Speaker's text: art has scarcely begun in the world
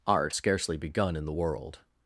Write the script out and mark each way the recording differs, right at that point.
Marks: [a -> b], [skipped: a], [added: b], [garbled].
art [skipped: has] scarcely begun in the world